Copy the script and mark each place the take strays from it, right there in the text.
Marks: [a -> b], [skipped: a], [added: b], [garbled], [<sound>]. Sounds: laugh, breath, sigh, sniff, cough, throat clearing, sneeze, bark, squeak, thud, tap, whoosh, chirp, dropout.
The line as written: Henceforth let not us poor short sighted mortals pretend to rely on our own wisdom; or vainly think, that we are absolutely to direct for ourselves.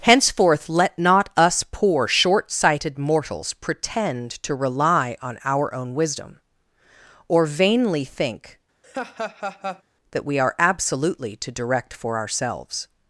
Henceforth let not us poor short sighted mortals pretend to rely on our own wisdom; or vainly think, [laugh] that we are absolutely to direct for ourselves.